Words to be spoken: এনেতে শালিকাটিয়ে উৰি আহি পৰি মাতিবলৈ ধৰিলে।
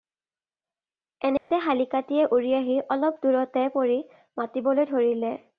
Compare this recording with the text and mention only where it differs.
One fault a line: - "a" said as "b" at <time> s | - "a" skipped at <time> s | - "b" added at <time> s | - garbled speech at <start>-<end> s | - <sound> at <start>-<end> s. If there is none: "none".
- dropout at 1.4-1.5 s
- "অলপ দূৰতে" added at 2.9 s